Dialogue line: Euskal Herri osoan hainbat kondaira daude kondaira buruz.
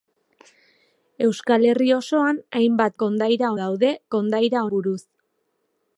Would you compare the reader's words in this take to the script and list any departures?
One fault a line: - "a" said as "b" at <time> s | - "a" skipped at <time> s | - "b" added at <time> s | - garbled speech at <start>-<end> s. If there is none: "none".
none